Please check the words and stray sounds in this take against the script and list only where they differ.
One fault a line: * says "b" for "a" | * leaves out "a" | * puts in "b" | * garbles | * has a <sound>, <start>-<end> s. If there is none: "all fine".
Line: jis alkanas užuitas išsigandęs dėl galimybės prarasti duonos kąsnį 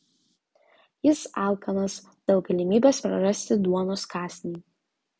* leaves out "užuitas išsigandęs"